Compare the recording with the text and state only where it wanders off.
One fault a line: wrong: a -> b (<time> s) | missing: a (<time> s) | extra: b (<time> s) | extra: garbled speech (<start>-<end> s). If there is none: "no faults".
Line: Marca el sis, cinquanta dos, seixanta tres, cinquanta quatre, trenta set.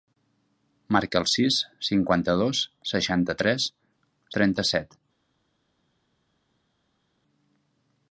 missing: cinquanta quatre (3.7 s)